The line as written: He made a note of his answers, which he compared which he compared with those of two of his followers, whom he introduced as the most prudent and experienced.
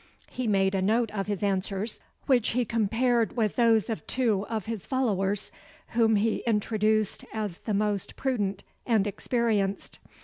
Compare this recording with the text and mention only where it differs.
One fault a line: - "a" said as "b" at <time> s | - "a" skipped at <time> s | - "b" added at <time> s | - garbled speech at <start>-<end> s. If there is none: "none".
- "which he compared" skipped at 3.3 s